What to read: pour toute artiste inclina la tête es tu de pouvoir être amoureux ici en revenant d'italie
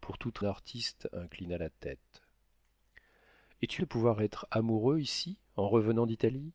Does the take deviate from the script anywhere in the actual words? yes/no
no